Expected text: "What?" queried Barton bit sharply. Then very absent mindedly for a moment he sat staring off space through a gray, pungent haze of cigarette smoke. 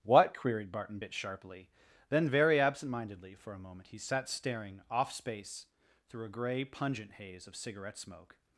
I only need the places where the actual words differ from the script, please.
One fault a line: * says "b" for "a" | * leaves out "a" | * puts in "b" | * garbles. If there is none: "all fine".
all fine